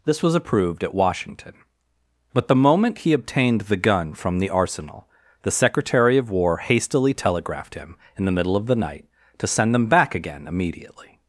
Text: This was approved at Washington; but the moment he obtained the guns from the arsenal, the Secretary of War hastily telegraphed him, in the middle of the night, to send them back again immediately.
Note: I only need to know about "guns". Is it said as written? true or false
false